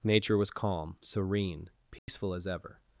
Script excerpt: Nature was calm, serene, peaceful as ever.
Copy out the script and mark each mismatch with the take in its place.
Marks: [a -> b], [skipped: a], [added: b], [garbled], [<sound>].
Nature was calm, serene, peaceful [dropout] as ever.